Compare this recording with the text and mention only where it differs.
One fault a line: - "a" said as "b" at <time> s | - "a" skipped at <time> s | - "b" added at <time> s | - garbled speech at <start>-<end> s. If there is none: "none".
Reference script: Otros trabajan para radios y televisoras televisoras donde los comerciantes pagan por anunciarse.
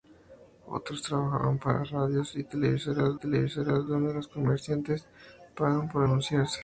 none